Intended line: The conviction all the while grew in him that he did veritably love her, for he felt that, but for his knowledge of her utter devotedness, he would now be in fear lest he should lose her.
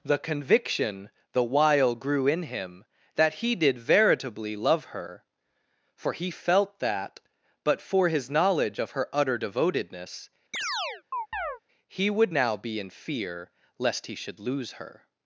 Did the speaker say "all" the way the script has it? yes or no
no